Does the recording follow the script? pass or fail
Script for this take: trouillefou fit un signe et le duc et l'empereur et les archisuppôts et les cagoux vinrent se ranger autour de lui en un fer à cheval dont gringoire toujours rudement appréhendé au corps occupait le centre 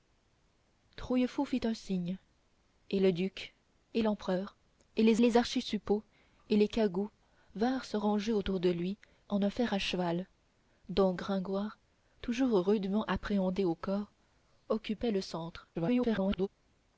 fail